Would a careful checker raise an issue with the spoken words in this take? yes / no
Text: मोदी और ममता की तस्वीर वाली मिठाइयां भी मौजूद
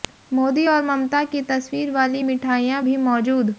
no